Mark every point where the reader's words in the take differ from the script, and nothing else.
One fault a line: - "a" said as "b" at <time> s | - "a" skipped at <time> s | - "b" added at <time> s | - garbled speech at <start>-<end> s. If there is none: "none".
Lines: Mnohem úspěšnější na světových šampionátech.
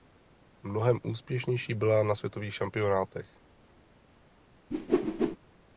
- "byla" added at 1.7 s